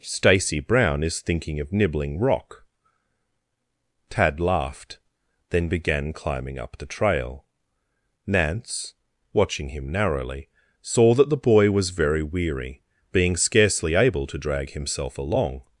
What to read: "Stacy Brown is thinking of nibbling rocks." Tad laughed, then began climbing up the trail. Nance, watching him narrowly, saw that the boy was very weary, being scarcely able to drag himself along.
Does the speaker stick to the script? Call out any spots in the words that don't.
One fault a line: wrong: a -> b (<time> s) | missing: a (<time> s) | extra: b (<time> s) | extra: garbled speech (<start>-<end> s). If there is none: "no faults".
wrong: rocks -> rock (2.2 s)